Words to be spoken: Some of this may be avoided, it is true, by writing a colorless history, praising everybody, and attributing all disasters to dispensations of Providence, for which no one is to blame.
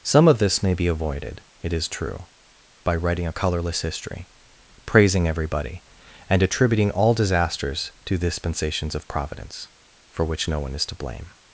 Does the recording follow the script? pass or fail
pass